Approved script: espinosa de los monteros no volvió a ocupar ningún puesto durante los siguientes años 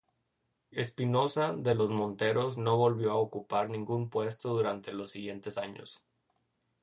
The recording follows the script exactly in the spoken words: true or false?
true